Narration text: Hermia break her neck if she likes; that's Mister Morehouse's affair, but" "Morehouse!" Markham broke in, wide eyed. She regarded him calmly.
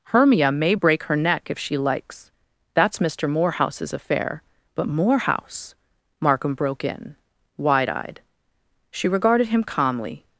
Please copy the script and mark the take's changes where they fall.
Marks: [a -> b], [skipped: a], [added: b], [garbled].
Hermia [added: may] break her neck if she likes; that's Mister Morehouse's affair, but" "Morehouse!" Markham broke in, wide eyed. She regarded him calmly.